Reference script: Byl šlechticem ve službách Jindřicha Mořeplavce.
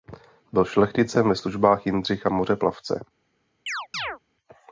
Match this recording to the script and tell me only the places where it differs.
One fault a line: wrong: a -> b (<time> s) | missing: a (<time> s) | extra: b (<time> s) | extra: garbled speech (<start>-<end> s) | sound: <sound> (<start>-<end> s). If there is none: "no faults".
sound: chirp (3.7-4.2 s)